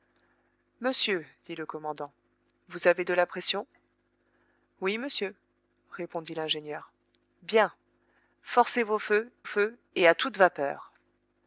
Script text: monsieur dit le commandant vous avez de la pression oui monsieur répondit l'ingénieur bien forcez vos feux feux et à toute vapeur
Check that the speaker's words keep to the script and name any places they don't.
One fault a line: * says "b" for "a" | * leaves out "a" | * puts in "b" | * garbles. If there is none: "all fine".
all fine